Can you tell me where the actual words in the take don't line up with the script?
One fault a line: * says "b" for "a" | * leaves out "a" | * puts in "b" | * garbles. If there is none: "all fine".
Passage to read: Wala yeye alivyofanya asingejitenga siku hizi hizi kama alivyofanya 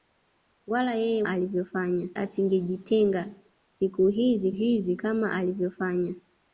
all fine